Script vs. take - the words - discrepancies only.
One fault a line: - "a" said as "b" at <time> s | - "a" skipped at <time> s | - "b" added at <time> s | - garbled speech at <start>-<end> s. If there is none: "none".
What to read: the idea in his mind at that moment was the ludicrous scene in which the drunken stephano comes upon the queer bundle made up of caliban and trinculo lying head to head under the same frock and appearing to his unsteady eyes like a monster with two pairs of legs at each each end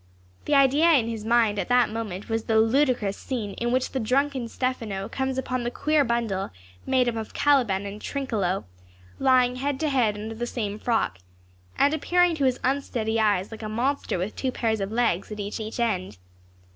none